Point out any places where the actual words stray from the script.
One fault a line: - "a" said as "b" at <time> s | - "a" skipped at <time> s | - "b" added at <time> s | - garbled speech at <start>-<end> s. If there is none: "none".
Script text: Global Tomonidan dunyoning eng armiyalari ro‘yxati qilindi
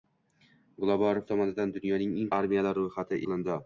none